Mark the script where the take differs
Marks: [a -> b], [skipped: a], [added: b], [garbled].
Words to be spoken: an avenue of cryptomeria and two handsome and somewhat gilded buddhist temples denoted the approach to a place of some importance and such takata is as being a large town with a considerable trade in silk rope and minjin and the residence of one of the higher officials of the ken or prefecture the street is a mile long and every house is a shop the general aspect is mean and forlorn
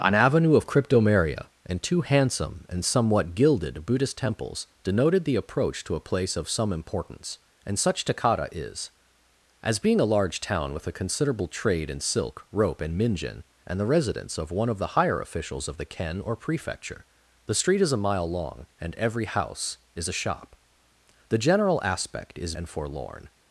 an avenue of cryptomeria and two handsome and somewhat gilded buddhist temples denoted the approach to a place of some importance and such takata is as being a large town with a considerable trade in silk rope and minjin and the residence of one of the higher officials of the ken or prefecture the street is a mile long and every house is a shop the general aspect is [skipped: mean] and forlorn